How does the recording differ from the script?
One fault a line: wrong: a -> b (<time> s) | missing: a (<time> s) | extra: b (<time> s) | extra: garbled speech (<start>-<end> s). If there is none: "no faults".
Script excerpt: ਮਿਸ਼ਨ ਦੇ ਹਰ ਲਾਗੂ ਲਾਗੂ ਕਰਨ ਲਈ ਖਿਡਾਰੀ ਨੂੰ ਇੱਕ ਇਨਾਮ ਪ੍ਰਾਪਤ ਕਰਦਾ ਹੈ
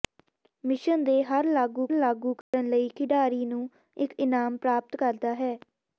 no faults